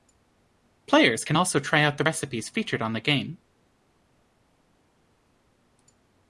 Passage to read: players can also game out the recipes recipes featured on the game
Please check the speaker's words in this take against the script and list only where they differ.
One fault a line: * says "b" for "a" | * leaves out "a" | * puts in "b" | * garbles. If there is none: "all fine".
* says "try" for "game"
* leaves out "recipes"